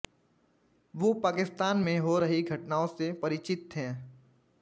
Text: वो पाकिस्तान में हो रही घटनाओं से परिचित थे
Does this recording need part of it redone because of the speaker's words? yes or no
no